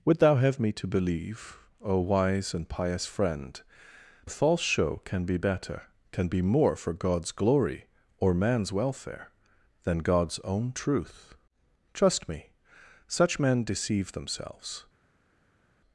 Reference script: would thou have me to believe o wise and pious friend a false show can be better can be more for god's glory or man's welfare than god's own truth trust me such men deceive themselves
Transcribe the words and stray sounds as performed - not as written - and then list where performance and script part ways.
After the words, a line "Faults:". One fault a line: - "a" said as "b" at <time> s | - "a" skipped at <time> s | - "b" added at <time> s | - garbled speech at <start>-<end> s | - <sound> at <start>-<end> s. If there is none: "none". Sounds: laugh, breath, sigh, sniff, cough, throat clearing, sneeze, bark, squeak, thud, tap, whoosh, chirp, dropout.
would thou have me to believe o wise and pious friend a false show can be better can be more for god's glory or man's welfare than god's own truth trust me such men deceive themselves
Faults:
none